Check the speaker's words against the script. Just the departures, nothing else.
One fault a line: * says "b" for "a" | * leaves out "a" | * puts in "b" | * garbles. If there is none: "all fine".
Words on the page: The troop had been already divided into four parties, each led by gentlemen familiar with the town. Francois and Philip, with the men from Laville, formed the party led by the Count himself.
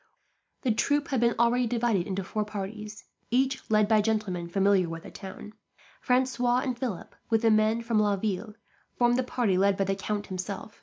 all fine